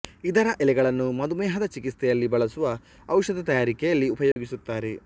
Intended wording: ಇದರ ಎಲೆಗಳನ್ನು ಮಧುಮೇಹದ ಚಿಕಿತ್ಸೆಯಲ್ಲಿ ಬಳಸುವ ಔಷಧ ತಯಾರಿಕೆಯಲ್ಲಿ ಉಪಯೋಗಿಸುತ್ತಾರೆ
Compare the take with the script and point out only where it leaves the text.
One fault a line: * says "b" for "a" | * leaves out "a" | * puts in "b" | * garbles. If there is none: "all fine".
all fine